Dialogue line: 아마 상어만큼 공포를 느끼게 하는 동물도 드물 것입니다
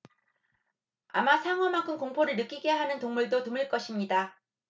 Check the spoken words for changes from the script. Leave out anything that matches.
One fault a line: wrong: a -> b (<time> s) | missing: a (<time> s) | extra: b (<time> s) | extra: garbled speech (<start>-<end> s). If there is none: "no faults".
no faults